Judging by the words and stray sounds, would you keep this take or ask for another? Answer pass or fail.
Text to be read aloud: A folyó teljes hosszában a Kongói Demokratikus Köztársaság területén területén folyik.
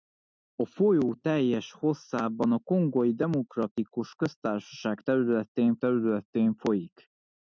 pass